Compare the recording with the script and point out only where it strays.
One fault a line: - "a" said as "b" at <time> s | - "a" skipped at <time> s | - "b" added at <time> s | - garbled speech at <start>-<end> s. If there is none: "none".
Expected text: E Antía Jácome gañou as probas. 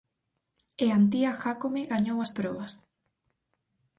none